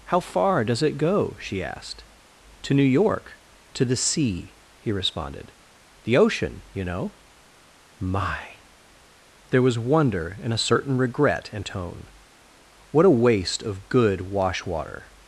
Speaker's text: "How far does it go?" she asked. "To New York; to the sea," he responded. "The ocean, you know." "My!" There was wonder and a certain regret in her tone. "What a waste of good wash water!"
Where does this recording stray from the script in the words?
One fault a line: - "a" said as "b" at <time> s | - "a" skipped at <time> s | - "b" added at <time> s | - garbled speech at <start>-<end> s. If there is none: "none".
- "her" skipped at 11.6 s